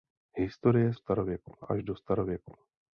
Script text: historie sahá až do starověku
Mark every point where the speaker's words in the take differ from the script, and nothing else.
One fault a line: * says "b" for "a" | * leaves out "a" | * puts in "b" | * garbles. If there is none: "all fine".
* says "starověku" for "sahá"